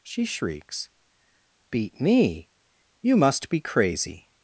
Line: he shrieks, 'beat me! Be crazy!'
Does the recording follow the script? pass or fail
fail